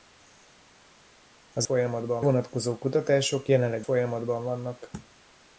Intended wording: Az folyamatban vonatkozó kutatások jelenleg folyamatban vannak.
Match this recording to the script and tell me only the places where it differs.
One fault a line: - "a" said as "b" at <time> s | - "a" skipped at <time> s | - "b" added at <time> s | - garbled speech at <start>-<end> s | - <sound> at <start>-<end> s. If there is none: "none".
none